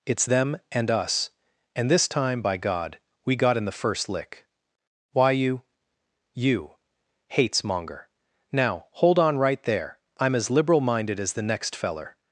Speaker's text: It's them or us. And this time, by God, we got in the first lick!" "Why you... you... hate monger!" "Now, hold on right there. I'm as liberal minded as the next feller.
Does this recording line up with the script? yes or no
no